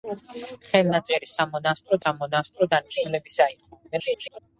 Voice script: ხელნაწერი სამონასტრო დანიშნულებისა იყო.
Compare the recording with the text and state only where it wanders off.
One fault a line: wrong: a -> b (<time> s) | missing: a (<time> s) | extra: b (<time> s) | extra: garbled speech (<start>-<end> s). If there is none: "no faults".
extra: სამონასტრო (2.0 s)
extra: garbled speech (3.9-4.4 s)